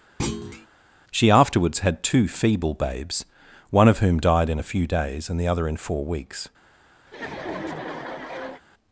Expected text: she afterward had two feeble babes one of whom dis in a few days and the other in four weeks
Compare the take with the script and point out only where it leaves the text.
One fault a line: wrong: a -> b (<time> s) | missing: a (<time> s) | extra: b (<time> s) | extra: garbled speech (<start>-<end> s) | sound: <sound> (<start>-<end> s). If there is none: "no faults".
sound: thud (0.2-0.7 s)
wrong: afterward -> afterwards (1.3 s)
wrong: dis -> died (4.2 s)
sound: laugh (7.1-8.6 s)